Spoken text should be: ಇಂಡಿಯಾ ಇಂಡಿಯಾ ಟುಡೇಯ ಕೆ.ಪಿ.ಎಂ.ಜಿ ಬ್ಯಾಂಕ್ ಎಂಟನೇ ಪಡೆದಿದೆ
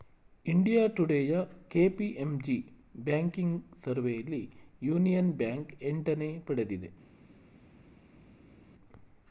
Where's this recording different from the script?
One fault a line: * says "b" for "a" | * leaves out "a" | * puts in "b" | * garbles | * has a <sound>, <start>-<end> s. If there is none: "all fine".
* leaves out "ಇಂಡಿಯಾ"
* puts in "ಬ್ಯಾಂಕಿಂಗ್ ಸರ್ವೆಯಲ್ಲಿ ಯೂನಿಯನ್"